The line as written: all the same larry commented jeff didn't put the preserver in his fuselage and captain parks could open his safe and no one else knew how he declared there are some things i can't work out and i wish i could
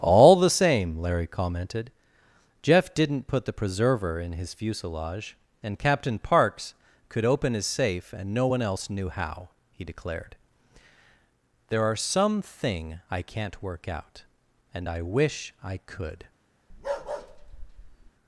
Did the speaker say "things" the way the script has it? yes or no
no